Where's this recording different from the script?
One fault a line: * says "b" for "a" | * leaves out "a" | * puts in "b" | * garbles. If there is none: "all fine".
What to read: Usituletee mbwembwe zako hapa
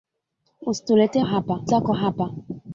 * says "hapa" for "mbwembwe"